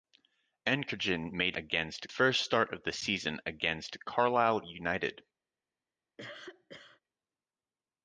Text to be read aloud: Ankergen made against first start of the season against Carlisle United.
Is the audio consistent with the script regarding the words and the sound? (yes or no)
no